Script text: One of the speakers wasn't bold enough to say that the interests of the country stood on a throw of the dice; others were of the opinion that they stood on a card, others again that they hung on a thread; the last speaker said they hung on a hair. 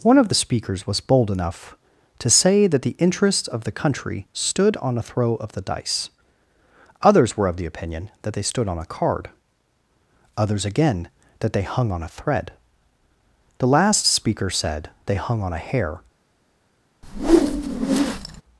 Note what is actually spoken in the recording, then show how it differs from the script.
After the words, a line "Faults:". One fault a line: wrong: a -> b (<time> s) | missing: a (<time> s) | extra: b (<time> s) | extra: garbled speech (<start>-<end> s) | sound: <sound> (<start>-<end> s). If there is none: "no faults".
One of the speakers was bold enough to say that the interests of the country stood on a throw of the dice; others were of the opinion that they stood on a card, others again that they hung on a thread; the last speaker said they hung on a hair.
Faults:
wrong: wasn't -> was (0.9 s)
sound: whoosh (17.0-18.4 s)